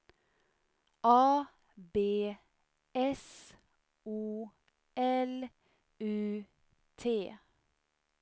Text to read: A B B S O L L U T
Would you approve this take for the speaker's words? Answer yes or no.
no